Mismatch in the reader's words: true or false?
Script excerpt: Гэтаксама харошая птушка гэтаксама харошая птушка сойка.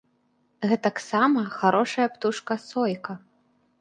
true